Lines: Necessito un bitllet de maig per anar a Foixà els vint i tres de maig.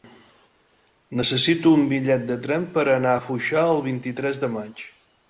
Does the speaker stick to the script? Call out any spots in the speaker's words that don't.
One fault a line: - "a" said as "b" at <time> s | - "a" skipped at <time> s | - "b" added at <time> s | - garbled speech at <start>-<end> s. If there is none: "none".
- "maig" said as "tren" at 2.5 s
- "els" said as "el" at 3.7 s